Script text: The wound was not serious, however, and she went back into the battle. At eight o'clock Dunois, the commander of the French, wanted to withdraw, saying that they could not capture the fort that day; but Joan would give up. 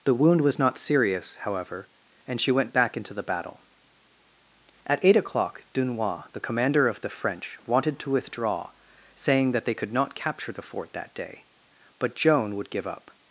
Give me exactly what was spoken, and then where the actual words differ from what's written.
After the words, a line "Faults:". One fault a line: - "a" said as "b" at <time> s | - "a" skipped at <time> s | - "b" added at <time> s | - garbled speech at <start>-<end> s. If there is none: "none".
The wound was not serious, however, and she went back into the battle. At eight o'clock Dunois, the commander of the French, wanted to withdraw, saying that they could not capture the fort that day; but Joan would give up.
Faults:
none